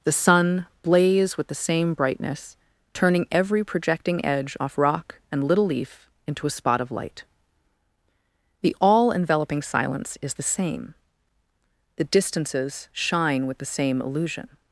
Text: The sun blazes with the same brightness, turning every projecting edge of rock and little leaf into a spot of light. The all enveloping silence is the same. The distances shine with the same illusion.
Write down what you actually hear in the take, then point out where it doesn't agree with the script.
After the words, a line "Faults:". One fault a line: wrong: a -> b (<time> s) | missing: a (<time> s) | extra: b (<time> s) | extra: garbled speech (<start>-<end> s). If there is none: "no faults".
The sun blaze with the same brightness, turning every projecting edge off rock and little leaf into a spot of light. The all enveloping silence is the same. The distances shine with the same illusion.
Faults:
wrong: blazes -> blaze (0.8 s)
wrong: of -> off (4.6 s)